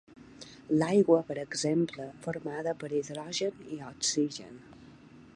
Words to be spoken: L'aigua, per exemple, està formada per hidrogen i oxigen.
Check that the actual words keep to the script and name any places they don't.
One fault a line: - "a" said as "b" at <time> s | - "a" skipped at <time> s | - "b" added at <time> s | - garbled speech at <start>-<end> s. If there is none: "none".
- "està" skipped at 2.1 s